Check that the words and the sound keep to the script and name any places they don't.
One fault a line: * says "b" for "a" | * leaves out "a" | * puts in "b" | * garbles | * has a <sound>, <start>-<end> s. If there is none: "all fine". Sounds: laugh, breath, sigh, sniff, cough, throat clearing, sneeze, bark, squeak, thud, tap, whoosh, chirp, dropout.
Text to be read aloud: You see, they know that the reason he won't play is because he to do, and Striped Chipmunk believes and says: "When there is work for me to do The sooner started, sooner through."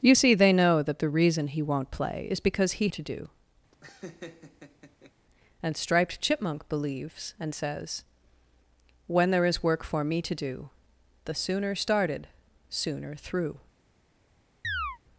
* has a laugh, 3.7-5.1 s
* has a chirp, 14.6-15.0 s